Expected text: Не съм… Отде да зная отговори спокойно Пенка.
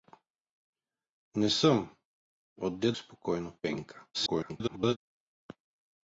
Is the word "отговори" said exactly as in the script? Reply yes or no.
no